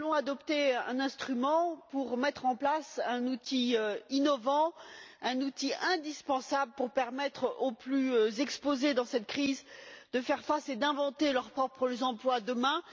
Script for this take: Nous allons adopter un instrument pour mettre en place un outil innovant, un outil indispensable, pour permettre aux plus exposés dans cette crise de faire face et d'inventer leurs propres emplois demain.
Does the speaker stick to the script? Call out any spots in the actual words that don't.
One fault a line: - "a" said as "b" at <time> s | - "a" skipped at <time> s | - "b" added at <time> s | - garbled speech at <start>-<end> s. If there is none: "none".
none